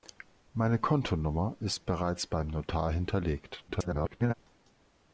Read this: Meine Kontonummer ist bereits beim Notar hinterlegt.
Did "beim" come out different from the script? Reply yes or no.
no